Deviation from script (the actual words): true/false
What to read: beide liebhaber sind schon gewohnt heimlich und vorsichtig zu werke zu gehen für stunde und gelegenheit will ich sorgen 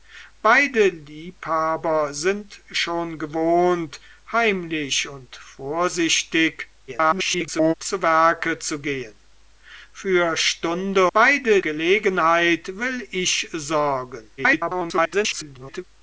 true